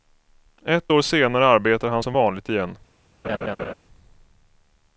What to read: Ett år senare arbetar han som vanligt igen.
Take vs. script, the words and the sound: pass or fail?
fail